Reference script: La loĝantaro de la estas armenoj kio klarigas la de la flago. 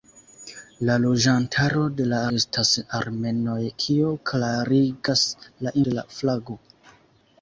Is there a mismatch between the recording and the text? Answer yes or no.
no